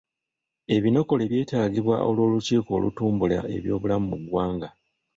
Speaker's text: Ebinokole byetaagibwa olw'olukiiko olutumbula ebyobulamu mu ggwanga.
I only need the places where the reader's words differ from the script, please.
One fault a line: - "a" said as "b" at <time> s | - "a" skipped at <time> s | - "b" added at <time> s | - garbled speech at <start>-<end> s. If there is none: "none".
none